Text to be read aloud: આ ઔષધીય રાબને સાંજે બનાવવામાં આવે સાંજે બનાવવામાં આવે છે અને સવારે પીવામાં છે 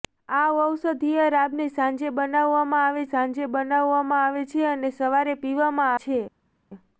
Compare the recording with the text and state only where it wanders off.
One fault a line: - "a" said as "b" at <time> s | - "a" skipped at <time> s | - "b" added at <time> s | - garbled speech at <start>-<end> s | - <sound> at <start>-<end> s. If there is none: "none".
none